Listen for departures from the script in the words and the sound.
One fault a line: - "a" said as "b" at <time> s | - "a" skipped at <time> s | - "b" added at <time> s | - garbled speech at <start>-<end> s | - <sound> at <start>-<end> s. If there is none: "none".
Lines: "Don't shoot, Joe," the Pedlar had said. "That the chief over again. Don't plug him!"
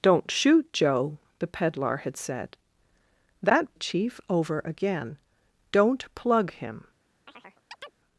- chirp at 7.3-8.0 s